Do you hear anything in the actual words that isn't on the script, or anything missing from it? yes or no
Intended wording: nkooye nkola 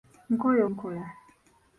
no